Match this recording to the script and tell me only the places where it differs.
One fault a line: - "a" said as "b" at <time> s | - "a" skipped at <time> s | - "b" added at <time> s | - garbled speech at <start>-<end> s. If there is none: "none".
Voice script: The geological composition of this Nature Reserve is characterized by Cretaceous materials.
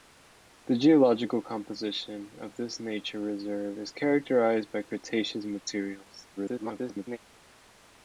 - garbled speech at 6.4-7.2 s